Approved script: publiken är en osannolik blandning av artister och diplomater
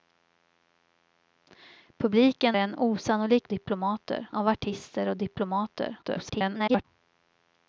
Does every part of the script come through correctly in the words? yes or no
no